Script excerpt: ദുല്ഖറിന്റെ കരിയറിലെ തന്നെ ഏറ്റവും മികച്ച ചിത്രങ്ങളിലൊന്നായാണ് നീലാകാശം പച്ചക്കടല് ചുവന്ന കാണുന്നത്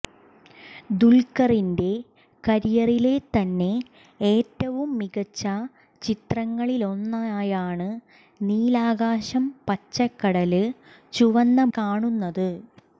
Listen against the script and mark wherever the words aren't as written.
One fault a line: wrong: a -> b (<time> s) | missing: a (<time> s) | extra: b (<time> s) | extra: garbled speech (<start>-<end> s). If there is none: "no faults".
no faults